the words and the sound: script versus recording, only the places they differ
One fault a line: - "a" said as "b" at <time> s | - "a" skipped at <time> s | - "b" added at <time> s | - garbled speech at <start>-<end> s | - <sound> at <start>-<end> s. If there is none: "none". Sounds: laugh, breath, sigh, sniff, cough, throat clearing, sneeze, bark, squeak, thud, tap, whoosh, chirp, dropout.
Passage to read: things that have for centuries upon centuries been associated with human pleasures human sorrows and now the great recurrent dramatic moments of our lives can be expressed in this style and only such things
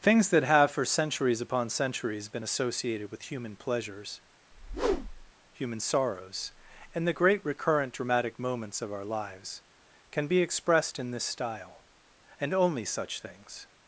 - whoosh at 4.5-5.3 s
- "now" skipped at 7.1 s